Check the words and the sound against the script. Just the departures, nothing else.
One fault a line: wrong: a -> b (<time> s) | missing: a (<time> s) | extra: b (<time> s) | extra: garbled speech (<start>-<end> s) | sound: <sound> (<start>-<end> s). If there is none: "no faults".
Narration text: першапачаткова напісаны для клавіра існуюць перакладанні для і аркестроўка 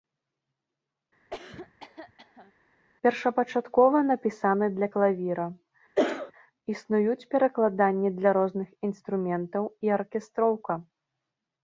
sound: cough (1.3-2.5 s)
sound: cough (5.9-6.3 s)
extra: розных інструментаў (8.4 s)